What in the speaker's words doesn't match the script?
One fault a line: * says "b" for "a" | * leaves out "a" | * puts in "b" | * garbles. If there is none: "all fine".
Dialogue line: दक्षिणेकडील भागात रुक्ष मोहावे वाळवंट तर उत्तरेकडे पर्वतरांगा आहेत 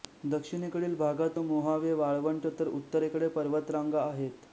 * leaves out "रुक्ष"